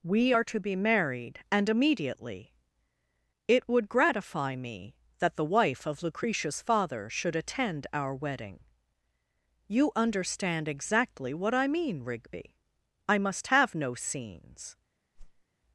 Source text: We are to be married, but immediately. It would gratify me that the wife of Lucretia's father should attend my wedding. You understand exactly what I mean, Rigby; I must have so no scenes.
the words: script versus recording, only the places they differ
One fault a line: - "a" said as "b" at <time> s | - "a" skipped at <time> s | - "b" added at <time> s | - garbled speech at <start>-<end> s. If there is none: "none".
- "but" said as "and" at 1.5 s
- "my" said as "our" at 7.9 s
- "so" skipped at 13.7 s